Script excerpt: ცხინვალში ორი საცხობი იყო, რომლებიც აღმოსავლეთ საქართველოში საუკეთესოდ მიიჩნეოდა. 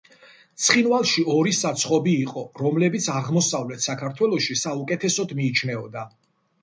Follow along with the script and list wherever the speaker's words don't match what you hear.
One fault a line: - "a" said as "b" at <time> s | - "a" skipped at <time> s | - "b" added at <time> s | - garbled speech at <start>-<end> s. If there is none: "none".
none